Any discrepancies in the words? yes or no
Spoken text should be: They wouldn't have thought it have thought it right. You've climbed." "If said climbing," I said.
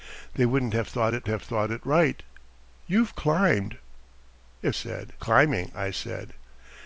no